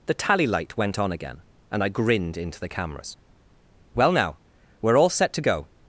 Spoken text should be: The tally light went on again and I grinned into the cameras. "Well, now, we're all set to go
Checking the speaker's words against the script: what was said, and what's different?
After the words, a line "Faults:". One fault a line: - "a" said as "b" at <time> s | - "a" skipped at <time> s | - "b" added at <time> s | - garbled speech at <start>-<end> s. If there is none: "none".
The tally light went on again and I grinned into the cameras. "Well, now, we're all set to go
Faults:
none